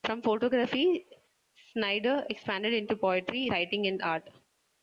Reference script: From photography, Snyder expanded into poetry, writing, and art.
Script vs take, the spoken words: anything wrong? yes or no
no